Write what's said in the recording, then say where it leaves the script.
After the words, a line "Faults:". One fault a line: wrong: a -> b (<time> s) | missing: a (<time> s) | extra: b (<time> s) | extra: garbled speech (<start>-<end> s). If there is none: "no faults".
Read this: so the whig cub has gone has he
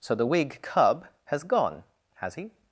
so the whig cub has gone has he
Faults:
no faults